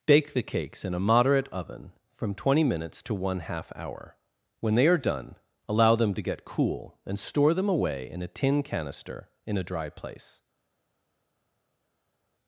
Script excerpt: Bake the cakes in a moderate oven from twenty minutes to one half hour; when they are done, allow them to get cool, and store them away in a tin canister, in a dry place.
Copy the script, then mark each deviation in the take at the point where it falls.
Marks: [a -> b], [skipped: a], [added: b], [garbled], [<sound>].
Bake the cakes in a moderate oven from twenty minutes to one half hour; when they are done, allow them to get cool, and store them away in a tin canister, in a dry place.